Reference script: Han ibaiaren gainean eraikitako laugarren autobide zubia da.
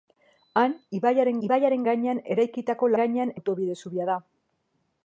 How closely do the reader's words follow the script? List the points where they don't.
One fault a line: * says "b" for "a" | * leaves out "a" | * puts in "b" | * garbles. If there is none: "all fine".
* puts in "ibaiaren"
* says "gainean" for "laugarren"